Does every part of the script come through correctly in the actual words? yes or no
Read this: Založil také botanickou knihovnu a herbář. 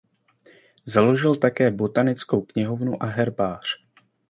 yes